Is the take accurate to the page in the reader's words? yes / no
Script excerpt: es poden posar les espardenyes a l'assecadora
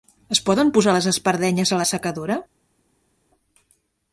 yes